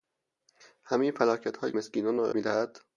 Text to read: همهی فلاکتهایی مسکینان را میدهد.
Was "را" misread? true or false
false